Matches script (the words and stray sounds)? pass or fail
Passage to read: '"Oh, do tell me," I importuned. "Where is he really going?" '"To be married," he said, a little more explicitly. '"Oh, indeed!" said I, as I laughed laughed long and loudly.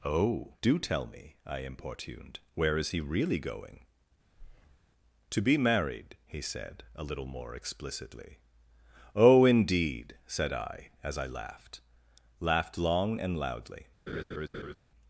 fail